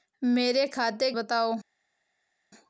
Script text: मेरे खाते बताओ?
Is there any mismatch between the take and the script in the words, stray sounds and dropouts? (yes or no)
no